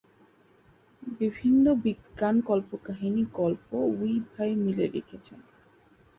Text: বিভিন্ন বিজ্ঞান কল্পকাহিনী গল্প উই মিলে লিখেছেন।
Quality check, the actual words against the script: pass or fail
fail